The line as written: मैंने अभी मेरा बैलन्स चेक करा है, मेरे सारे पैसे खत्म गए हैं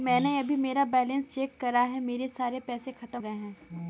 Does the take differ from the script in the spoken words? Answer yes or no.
no